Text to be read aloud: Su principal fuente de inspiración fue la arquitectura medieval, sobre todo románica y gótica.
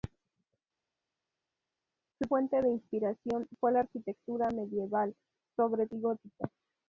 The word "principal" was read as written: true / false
false